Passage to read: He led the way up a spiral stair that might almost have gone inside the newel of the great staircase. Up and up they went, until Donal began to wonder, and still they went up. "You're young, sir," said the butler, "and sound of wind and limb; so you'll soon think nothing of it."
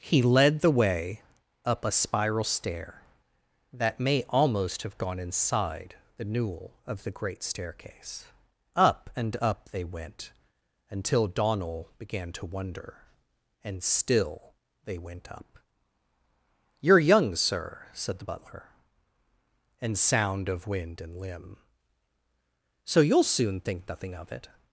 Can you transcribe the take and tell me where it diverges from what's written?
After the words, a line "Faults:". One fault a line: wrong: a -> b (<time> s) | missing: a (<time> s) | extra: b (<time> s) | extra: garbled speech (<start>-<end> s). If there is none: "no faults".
He led the way up a spiral stair that may almost have gone inside the newel of the great staircase. Up and up they went, until Donal began to wonder, and still they went up. "You're young, sir," said the butler, "and sound of wind and limb; so you'll soon think nothing of it."
Faults:
wrong: might -> may (4.0 s)